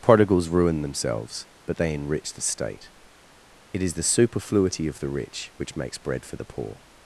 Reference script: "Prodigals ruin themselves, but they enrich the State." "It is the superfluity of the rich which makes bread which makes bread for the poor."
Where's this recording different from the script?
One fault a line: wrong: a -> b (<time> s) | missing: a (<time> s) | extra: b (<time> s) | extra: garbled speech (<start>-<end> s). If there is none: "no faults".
missing: which makes bread (6.2 s)